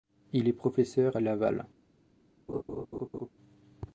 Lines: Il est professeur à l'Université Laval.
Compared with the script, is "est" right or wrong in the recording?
right